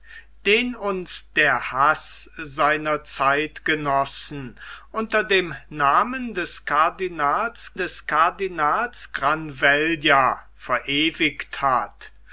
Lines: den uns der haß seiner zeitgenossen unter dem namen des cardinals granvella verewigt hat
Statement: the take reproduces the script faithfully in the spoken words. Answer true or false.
false